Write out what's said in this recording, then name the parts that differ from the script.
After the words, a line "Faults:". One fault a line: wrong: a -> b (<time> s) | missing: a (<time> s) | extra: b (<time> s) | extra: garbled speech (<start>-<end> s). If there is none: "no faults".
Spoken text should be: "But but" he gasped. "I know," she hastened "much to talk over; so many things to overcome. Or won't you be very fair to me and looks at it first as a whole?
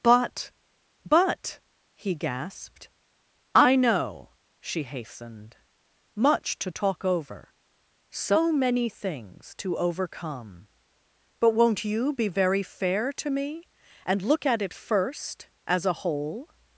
"But but" he gasped. "I know," she hastened "much to talk over; so many things to overcome. But won't you be very fair to me and look at it first as a whole?
Faults:
wrong: Or -> But (11.4 s)
wrong: looks -> look (14.2 s)